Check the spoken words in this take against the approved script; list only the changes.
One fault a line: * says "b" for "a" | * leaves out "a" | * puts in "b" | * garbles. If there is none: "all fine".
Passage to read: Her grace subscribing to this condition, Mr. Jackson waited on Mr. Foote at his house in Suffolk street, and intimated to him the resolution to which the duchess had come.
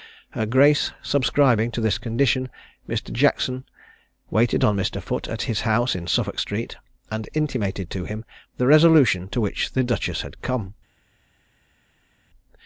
all fine